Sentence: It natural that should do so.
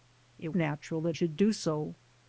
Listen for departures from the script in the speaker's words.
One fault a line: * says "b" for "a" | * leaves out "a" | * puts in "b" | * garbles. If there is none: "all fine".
all fine